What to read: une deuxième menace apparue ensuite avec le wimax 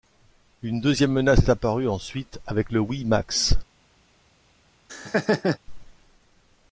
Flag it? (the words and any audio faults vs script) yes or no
yes